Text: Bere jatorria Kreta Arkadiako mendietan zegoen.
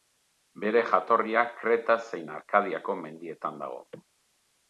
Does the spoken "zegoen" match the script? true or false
false